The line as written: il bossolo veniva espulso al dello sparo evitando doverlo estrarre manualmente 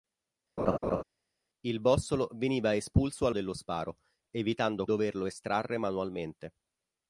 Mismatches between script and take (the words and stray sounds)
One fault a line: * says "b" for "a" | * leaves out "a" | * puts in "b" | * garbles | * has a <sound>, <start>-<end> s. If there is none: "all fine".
* has a laugh, 0.6-1.0 s